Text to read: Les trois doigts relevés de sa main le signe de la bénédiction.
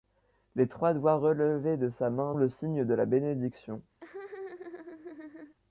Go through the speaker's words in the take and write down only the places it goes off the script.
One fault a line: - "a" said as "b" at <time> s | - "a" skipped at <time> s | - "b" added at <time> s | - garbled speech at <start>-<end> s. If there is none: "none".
none